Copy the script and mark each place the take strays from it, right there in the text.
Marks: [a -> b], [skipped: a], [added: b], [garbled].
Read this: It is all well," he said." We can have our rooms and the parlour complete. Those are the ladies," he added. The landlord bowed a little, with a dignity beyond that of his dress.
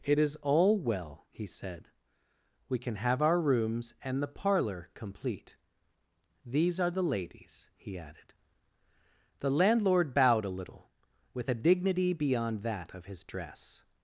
It is all well," he said." We can have our rooms and the parlour complete. [Those -> These] are the ladies," he added. The landlord bowed a little, with a dignity beyond that of his dress.